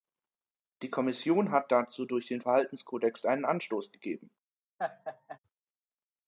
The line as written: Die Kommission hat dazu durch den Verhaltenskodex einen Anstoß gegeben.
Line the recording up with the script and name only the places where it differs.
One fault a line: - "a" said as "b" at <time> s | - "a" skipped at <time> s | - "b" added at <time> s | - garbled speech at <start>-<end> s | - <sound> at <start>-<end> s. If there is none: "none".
- laugh at 4.8-5.4 s